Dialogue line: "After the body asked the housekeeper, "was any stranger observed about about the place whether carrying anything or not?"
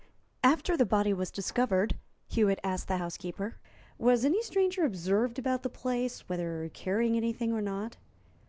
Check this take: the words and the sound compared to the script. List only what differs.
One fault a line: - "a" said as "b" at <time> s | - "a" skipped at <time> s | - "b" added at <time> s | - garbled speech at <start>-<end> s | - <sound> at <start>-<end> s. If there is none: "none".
- "was discovered Hewitt" added at 1.1 s
- "about" skipped at 5.6 s